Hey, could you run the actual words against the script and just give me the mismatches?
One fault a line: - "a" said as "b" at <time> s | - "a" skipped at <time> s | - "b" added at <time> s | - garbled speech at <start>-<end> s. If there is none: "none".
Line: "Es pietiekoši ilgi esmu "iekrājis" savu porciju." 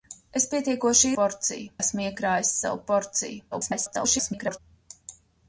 - "ilgi" said as "porciju" at 1.2 s
- garbled speech at 3.5-4.6 s